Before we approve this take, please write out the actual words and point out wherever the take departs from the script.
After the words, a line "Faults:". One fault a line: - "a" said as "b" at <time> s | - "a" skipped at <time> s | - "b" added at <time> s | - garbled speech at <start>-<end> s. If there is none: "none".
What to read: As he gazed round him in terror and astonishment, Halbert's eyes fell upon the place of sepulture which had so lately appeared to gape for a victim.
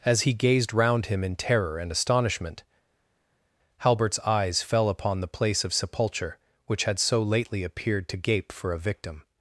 As he gazed round him in terror and astonishment, Halbert's eyes fell upon the place of sepulture which had so lately appeared to gape for a victim.
Faults:
none